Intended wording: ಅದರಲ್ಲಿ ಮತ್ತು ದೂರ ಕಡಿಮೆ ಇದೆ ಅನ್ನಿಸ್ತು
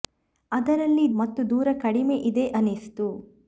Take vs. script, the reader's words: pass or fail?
pass